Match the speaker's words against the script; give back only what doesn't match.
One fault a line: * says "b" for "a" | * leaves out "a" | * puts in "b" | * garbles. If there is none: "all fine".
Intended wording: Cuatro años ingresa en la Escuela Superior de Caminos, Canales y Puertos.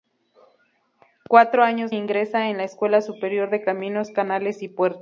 all fine